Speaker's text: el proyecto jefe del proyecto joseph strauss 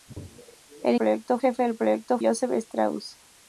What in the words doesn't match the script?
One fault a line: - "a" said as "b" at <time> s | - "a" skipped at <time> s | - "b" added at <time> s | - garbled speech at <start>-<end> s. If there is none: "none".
none